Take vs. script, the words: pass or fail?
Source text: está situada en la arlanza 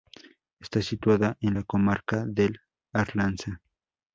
fail